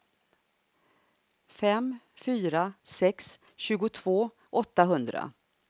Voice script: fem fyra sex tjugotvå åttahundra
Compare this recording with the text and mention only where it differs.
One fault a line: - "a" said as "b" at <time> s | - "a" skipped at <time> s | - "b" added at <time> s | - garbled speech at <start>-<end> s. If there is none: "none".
none